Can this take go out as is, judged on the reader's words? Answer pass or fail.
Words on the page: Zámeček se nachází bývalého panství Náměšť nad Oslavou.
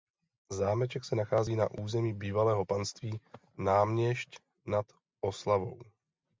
fail